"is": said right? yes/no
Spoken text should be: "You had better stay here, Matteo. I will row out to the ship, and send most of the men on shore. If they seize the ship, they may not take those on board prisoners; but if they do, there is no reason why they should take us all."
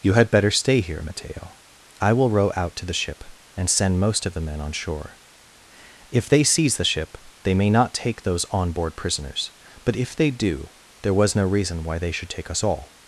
no